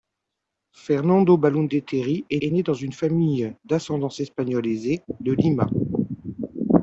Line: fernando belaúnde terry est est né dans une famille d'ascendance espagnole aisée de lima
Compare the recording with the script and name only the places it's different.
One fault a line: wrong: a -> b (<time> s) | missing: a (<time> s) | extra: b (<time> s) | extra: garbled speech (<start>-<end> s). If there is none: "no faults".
no faults